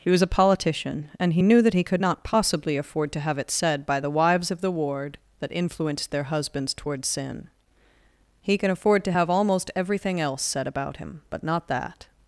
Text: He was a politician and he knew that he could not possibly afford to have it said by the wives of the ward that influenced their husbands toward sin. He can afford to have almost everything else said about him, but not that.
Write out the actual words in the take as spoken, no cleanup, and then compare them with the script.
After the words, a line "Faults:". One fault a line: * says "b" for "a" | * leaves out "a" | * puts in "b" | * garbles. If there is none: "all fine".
He was a politician and he knew that he could not possibly afford to have it said by the wives of the ward that influenced their husbands toward sin. He can afford to have almost everything else said about him, but not that.
Faults:
all fine